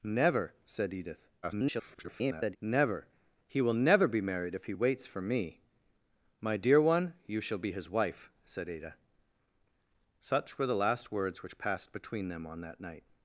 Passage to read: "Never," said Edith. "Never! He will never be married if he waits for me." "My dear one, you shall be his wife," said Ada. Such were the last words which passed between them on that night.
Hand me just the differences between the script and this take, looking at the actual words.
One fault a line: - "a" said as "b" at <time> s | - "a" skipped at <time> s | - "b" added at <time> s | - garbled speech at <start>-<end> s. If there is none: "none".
- garbled speech at 1.4-2.6 s